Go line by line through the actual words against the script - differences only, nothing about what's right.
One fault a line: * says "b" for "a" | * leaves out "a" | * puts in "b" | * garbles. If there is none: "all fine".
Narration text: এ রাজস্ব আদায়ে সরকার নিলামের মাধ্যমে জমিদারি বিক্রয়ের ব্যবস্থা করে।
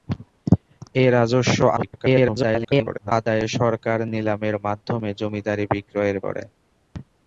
* garbles
* leaves out "ব্যবস্থা"